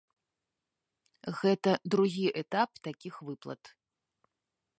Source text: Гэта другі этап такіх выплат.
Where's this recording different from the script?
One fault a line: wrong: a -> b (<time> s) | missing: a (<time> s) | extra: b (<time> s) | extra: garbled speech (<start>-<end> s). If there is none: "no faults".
no faults